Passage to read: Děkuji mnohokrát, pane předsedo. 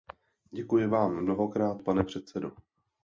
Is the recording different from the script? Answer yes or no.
yes